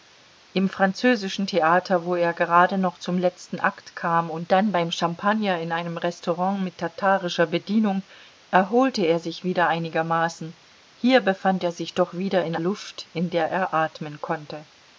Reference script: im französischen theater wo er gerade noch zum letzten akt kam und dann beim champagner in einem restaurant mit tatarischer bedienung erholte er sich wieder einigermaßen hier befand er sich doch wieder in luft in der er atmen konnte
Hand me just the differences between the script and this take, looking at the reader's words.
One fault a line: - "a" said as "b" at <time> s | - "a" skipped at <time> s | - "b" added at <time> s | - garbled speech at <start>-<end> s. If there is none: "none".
none